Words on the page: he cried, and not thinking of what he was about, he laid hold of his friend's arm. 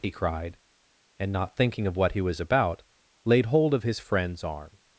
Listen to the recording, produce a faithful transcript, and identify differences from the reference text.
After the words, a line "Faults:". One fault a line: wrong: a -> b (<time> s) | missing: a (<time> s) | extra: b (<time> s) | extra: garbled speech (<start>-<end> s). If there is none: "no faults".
he cried, and not thinking of what he was about, laid hold of his friend's arm.
Faults:
missing: he (2.8 s)